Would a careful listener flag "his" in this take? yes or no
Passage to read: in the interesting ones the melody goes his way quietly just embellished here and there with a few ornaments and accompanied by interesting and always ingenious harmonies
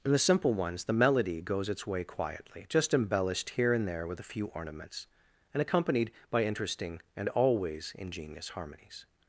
yes